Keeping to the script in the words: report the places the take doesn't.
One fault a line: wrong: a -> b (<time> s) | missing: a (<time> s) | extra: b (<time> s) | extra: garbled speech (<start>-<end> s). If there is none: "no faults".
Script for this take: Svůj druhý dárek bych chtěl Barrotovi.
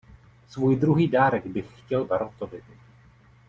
no faults